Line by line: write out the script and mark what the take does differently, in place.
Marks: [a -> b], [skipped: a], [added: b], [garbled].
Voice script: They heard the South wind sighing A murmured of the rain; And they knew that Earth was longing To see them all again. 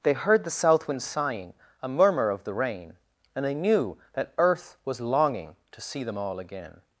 They heard the South wind sighing A [murmured -> murmur] of the rain; And they knew that Earth was longing To see them all again.